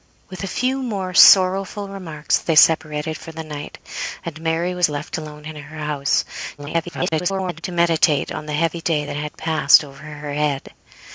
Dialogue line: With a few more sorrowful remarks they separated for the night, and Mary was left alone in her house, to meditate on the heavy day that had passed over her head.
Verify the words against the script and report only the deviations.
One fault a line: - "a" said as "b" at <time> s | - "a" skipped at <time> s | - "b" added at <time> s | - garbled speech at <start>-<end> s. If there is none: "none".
- garbled speech at 6.6-7.6 s